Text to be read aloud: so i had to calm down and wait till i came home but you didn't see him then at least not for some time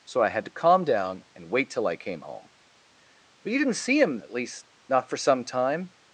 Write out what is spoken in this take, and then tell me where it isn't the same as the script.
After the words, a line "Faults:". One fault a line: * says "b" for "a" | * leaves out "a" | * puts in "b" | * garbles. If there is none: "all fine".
so i had to calm down and wait till i came home but you didn't see him at least not for some time
Faults:
* leaves out "then"